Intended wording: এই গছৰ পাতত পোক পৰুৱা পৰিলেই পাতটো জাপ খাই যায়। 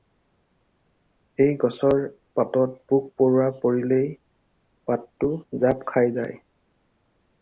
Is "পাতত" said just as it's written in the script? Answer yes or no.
yes